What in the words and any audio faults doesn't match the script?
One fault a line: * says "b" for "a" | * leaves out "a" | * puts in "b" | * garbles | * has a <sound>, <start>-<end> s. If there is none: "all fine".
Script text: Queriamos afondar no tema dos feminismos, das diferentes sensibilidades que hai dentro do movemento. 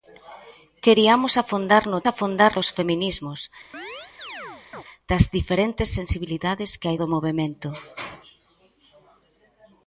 * says "afondar" for "tema"
* has a chirp, 3.7-4.8 s
* leaves out "dentro"